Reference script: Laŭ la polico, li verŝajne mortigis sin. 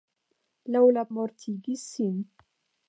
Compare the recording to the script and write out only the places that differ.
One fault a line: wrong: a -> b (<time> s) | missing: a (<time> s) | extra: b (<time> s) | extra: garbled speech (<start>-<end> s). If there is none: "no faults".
missing: polico li verŝajne (1.0 s)